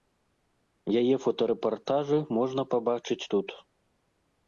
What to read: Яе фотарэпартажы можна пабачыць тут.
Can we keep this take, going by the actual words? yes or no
yes